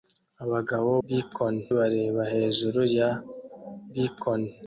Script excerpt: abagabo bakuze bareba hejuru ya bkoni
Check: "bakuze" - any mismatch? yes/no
yes